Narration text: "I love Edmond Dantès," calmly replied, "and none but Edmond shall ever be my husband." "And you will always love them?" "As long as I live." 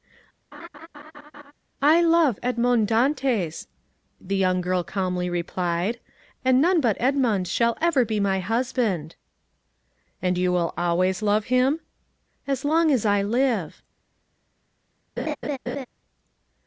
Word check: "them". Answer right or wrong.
wrong